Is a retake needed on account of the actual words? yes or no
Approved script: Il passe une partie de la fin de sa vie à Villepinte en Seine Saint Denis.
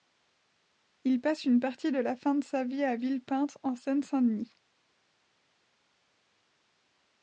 no